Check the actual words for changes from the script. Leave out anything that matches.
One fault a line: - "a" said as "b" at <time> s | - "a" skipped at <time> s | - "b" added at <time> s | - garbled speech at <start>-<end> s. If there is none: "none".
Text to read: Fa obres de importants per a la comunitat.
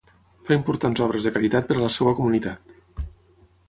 - "importants" added at 0.6 s
- "importants" said as "caritat" at 1.3 s
- "seva" added at 2.0 s